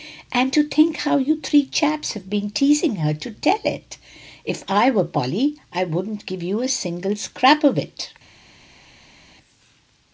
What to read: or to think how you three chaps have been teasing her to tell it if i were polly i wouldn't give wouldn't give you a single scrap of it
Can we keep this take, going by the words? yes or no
no